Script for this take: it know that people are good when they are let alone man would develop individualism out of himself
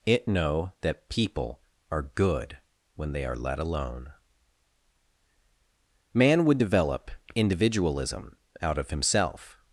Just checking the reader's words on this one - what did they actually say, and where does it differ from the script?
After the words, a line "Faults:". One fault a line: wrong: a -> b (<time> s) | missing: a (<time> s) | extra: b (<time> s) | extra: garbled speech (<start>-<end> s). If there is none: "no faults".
it know that people are good when they are let alone man would develop individualism out of himself
Faults:
no faults